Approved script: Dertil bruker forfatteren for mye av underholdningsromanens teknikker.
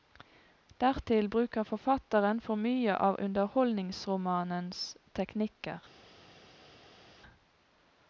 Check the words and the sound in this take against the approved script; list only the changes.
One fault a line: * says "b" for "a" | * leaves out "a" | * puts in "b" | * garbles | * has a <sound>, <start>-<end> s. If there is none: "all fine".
all fine